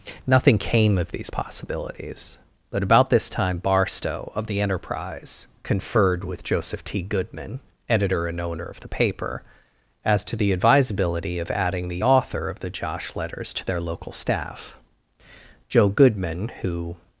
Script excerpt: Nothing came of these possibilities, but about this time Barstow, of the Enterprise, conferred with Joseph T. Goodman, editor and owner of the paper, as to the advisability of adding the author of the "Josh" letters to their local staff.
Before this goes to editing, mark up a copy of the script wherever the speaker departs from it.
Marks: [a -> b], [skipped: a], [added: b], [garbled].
Nothing came of these possibilities, but about this time Barstow, of the Enterprise, conferred with Joseph T. Goodman, editor and owner of the paper, as to the advisability of adding the author of the "Josh" letters to their local staff. [added: Joe Goodman who]